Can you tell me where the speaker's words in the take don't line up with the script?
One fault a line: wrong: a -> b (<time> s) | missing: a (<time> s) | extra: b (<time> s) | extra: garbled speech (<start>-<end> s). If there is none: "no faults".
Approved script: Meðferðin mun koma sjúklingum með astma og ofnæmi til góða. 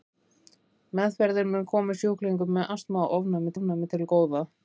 extra: ofnæmi (3.5 s)